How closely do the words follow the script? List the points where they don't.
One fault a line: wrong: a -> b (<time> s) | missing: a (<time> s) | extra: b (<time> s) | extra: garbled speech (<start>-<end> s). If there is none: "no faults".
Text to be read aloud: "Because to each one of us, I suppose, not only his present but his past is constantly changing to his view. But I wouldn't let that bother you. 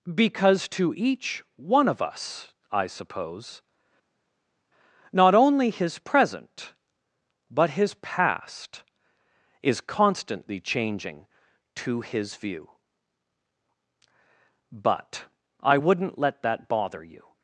no faults